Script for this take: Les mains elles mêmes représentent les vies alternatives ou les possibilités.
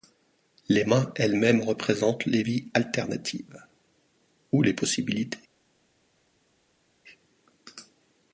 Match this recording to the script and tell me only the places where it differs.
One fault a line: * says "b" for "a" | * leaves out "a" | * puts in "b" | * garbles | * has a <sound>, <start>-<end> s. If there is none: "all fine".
all fine